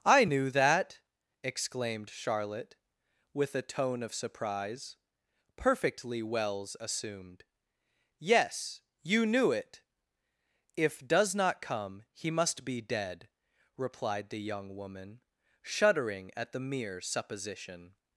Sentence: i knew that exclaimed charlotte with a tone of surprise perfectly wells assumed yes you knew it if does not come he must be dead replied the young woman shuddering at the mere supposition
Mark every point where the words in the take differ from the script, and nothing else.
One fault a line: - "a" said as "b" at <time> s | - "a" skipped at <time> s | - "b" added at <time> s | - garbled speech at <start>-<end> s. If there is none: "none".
none